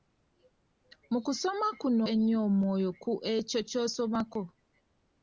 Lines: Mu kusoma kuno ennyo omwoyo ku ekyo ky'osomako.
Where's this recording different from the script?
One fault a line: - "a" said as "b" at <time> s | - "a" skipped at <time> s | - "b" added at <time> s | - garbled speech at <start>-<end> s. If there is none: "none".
none